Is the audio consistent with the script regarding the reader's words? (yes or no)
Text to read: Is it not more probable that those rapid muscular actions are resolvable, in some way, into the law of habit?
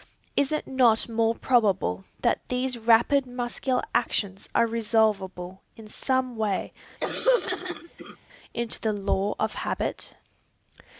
no